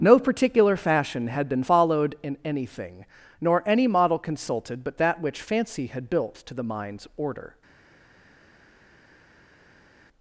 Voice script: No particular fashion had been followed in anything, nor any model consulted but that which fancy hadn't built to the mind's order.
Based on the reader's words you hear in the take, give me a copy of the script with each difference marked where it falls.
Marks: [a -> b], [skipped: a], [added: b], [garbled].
No particular fashion had been followed in anything, nor any model consulted but that which fancy [hadn't -> had] built to the mind's order.